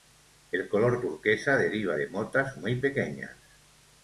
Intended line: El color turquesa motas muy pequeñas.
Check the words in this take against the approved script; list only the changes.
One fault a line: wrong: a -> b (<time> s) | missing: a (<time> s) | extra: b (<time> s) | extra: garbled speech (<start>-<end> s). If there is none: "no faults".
extra: deriva de (1.6 s)